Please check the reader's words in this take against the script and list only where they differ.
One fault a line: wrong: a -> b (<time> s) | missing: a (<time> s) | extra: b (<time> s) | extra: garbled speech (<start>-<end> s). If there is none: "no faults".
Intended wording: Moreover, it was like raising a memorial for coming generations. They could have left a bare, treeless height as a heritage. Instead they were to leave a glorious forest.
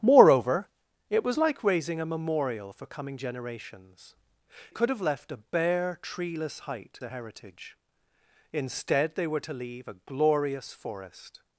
missing: They (4.2 s)
missing: as (7.0 s)